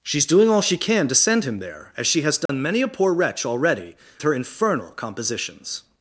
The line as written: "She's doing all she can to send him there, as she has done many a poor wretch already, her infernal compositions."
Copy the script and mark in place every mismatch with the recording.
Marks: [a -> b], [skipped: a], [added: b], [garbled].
"She's doing all she can to send him there, as she has done many a poor wretch already, her infernal compositions."